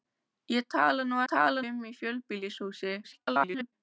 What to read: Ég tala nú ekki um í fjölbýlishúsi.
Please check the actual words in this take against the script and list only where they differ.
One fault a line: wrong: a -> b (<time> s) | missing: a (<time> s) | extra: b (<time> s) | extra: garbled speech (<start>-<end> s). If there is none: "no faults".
wrong: ekki -> tala (1.3 s)
extra: garbled speech (3.0-3.7 s)